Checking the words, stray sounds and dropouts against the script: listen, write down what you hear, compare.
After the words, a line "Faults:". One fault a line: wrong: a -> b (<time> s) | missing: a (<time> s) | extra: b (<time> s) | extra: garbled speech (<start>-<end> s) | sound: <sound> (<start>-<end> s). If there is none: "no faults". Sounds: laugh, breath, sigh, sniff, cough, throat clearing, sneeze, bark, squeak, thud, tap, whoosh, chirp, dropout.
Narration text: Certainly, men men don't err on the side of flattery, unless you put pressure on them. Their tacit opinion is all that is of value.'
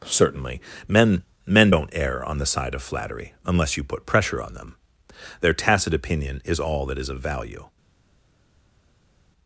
Certainly, men men don't err on the side of flattery, unless you put pressure on them. Their tacit opinion is all that is of value.'
Faults:
no faults